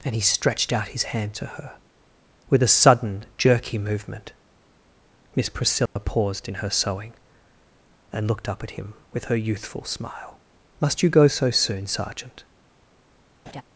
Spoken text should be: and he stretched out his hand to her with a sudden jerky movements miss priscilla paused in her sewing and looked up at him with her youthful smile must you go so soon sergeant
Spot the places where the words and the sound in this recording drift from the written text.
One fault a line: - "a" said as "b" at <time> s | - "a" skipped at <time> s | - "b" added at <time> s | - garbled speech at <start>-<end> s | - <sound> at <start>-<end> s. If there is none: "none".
- "movements" said as "movement" at 3.8 s
- dropout at 5.9-6.0 s
- laugh at 13.5-13.6 s